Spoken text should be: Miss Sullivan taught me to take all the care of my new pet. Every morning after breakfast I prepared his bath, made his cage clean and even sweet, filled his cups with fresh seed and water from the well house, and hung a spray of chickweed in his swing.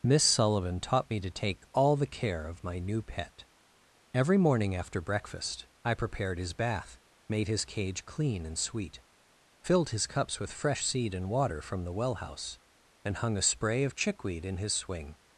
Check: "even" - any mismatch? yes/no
yes